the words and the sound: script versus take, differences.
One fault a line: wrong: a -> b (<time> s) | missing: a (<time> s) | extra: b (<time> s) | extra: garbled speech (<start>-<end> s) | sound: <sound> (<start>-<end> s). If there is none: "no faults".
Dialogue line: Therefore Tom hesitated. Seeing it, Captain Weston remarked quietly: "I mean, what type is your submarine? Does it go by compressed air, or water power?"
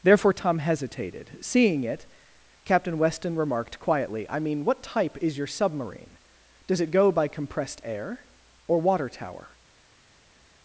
wrong: power -> tower (9.1 s)